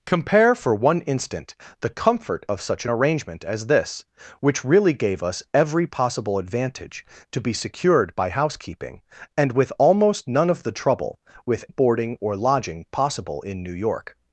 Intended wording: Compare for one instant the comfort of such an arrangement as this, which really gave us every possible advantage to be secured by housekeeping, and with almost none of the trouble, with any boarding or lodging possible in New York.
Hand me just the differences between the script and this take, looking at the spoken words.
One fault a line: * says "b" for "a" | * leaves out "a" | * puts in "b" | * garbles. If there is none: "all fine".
* leaves out "any"